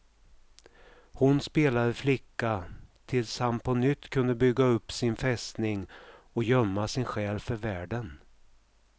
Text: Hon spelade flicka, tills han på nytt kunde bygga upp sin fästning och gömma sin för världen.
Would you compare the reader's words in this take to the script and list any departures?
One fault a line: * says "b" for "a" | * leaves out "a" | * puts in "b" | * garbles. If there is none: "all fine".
* puts in "själ"